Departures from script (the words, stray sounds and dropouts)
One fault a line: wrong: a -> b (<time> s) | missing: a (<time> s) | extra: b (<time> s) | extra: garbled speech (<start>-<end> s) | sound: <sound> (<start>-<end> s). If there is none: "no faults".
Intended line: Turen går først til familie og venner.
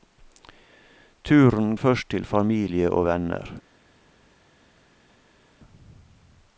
missing: går (1.8 s)